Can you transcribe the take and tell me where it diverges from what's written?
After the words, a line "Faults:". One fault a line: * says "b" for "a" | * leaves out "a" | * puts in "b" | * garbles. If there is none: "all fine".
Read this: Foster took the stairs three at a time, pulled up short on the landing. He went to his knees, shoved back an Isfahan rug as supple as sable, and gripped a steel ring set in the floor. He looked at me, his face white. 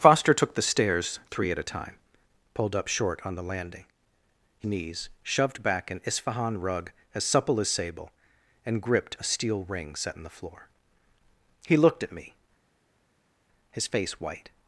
Foster took the stairs three at a time, pulled up short on the landing. He knees, shoved back an Isfahan rug as supple as sable, and gripped a steel ring set in the floor. He looked at me, his face white.
Faults:
* leaves out "went to his"